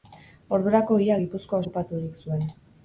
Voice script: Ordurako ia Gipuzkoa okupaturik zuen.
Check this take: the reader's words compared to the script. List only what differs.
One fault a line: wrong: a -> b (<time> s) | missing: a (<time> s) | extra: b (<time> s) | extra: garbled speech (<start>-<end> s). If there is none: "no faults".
no faults